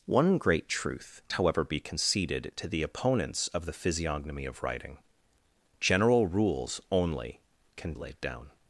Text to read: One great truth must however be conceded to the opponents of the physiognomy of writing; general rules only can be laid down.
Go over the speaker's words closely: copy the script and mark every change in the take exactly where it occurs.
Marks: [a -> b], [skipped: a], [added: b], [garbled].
One great truth [skipped: must] however be conceded to the opponents of the physiognomy of writing; general rules only can [skipped: be] laid down.